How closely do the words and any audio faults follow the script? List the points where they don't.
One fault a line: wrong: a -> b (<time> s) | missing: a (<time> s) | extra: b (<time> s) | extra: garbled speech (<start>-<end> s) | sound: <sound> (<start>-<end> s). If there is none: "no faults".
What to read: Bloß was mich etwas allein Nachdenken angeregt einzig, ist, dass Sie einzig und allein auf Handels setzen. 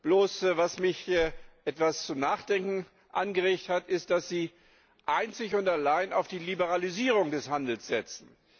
wrong: allein -> zum (2.1 s)
wrong: einzig -> hat (3.7 s)
extra: die Liberalisierung des (6.3 s)